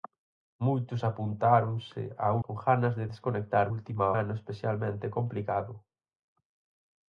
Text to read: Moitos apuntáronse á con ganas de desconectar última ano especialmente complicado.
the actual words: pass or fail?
pass